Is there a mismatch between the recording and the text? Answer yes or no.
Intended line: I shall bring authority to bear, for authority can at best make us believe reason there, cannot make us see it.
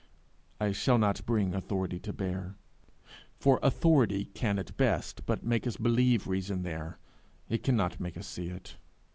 yes